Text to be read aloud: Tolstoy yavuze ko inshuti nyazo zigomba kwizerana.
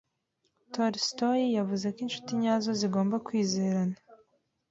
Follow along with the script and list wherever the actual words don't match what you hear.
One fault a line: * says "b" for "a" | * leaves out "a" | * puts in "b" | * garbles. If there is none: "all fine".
all fine